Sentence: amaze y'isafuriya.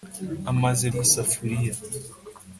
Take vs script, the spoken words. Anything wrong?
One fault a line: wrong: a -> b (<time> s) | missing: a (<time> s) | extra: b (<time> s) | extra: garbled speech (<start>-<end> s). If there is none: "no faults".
no faults